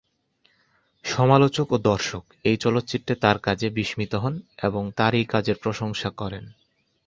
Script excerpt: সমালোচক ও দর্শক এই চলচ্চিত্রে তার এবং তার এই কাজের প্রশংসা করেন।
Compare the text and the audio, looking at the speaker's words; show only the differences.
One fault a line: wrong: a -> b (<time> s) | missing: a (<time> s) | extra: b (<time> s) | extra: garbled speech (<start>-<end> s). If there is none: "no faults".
extra: কাজে বিস্মিত হন (3.4 s)